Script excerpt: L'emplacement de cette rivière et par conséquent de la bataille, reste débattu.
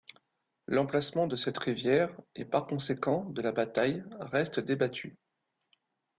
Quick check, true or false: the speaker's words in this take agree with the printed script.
true